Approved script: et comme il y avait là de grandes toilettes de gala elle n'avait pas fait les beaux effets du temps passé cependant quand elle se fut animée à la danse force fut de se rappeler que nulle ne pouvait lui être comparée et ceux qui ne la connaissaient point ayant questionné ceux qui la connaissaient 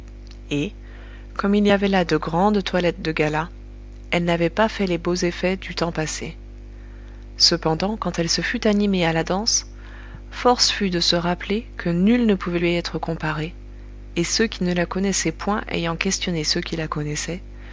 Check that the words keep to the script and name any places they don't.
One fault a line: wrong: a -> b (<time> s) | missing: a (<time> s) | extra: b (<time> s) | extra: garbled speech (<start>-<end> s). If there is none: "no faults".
no faults